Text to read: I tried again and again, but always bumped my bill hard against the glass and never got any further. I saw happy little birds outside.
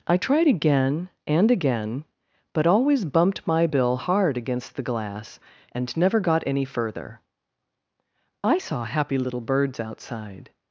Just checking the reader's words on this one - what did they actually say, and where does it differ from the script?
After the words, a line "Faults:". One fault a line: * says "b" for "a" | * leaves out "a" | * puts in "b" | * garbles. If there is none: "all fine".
I tried again and again, but always bumped my bill hard against the glass and never got any further. I saw happy little birds outside.
Faults:
all fine